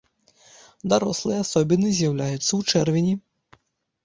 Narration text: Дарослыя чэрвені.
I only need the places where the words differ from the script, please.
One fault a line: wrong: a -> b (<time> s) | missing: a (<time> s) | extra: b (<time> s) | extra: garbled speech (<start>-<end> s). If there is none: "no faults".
extra: асобіны з'яўляюцца ў (1.4 s)